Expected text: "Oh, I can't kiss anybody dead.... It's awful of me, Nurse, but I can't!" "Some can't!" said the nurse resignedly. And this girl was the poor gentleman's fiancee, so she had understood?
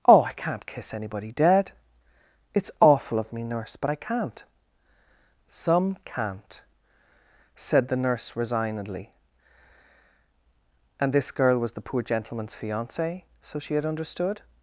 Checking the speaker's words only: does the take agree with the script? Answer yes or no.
yes